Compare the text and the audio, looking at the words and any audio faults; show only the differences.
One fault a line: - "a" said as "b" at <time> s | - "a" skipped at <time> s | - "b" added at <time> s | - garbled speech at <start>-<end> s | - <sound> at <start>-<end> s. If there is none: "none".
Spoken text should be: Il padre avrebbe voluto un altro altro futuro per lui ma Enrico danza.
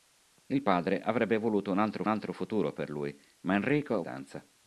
none